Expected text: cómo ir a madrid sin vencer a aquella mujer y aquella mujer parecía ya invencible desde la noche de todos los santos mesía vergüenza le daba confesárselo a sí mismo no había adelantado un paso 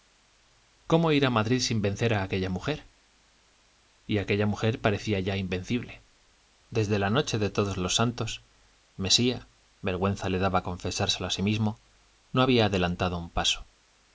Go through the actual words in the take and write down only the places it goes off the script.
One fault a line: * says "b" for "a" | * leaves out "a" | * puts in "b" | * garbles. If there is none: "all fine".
all fine